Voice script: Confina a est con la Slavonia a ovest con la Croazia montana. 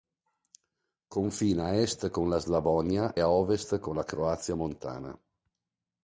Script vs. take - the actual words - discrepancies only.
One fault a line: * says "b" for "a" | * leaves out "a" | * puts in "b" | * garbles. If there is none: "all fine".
all fine